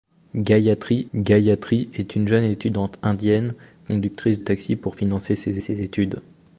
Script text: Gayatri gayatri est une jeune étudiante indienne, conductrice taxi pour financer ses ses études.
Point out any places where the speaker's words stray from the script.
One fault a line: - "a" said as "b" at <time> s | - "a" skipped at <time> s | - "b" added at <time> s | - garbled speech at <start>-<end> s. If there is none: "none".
none